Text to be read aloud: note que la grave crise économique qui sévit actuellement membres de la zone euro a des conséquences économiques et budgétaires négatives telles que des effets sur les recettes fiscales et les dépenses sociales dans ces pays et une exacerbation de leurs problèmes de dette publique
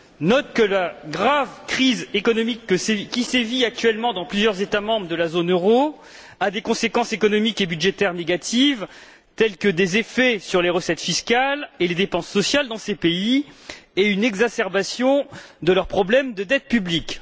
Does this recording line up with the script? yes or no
no